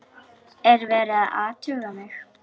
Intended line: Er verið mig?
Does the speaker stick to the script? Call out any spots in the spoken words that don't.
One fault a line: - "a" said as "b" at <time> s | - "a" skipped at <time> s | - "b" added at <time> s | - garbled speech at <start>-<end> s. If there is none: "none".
- "að athuga" added at 1.2 s